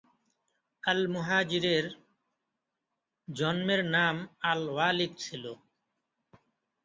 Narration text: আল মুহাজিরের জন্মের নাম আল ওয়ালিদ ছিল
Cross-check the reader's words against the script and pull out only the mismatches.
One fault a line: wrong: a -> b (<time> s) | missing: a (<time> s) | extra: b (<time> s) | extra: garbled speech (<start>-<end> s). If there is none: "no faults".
no faults